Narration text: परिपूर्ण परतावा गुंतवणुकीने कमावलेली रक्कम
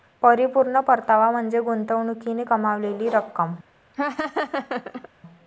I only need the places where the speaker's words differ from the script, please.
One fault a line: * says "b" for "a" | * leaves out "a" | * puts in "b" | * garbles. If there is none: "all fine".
* puts in "म्हणजे"